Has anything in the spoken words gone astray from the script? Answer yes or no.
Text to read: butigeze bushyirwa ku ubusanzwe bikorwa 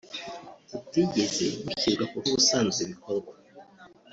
no